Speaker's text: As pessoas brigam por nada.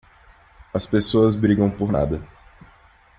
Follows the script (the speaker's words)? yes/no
yes